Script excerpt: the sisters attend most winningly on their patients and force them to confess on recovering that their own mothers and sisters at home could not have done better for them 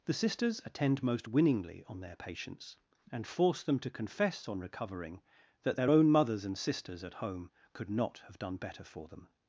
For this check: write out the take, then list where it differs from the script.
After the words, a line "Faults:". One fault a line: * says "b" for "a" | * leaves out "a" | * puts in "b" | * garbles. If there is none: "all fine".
the sisters attend most winningly on their patients and force them to confess on recovering that their own mothers and sisters at home could not have done better for them
Faults:
all fine